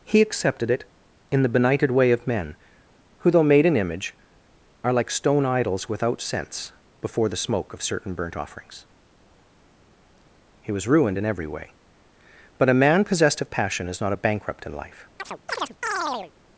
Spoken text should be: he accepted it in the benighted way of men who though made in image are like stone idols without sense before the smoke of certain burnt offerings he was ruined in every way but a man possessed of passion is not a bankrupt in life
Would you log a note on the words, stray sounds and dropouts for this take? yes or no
yes